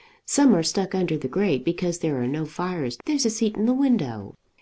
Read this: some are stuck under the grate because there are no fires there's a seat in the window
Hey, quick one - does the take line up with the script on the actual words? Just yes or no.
yes